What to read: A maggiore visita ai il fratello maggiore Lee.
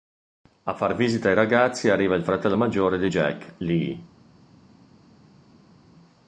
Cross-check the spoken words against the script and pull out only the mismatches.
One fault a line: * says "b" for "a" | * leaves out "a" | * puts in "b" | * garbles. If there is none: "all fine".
* says "far" for "maggiore"
* puts in "ragazzi arriva"
* puts in "di Jack"